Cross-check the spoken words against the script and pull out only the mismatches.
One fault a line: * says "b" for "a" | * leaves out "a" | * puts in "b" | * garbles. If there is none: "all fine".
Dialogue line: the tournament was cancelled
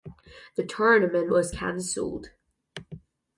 all fine